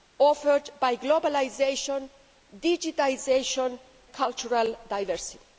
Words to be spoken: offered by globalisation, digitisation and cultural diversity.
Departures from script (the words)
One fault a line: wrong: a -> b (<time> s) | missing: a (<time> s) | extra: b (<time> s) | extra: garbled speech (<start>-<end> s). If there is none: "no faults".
missing: and (3.8 s)